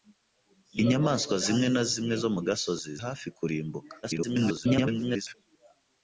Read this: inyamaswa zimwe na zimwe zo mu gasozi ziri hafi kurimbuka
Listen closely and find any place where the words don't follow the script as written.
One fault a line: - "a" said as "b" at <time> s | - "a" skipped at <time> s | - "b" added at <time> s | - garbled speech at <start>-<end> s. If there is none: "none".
- "ziri" skipped at 2.9 s
- garbled speech at 4.0-5.4 s